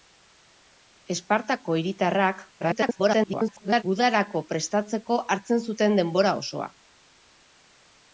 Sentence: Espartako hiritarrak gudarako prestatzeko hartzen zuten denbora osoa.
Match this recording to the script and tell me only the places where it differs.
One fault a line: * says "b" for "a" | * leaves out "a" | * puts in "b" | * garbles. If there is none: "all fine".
* garbles